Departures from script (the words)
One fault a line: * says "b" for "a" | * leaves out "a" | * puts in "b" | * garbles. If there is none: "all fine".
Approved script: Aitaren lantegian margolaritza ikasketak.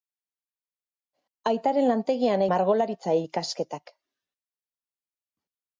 all fine